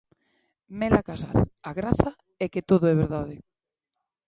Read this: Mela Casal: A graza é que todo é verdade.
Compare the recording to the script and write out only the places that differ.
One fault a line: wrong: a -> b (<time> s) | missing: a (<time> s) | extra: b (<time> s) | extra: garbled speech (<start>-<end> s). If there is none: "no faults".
no faults